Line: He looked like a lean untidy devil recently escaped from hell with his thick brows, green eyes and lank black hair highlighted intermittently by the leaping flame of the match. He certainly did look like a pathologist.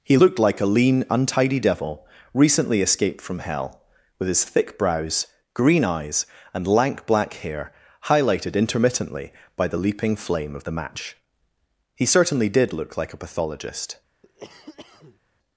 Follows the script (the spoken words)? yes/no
yes